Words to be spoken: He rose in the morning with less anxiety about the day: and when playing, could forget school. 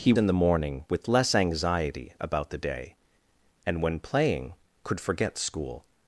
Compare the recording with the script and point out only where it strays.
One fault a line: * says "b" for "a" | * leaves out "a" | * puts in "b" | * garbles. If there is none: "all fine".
* leaves out "rose"